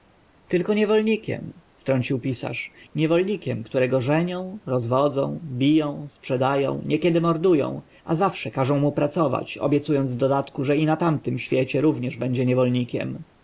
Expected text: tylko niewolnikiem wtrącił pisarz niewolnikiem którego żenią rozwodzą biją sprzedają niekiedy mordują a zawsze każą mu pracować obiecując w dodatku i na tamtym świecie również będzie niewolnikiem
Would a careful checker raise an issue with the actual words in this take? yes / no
yes